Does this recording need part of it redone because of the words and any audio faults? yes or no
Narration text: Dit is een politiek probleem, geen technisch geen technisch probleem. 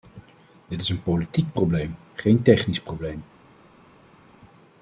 yes